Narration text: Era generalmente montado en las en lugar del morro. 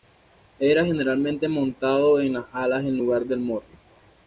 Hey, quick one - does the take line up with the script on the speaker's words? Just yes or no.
no